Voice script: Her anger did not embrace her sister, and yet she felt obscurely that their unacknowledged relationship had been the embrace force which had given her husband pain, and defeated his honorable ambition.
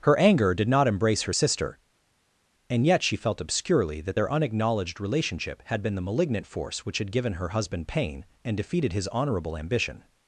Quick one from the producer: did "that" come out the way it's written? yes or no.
yes